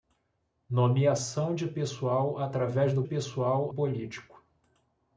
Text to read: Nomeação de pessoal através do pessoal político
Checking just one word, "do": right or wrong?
right